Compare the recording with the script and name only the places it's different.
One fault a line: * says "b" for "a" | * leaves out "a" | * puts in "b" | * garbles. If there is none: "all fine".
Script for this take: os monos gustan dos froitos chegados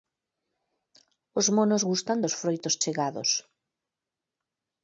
all fine